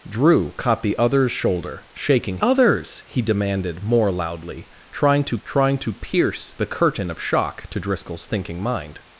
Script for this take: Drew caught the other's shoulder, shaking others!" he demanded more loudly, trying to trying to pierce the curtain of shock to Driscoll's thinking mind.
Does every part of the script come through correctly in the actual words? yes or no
yes